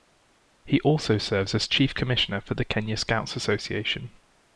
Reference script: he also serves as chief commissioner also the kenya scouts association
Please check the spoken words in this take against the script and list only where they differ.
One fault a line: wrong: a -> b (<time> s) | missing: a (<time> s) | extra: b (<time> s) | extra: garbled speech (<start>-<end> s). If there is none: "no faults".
wrong: also -> for (2.4 s)